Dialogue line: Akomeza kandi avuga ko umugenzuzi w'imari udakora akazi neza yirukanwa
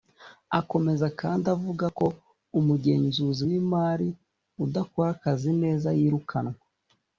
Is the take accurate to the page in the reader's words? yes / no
yes